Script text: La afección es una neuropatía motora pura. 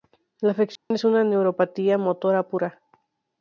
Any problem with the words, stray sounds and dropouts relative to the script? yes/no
yes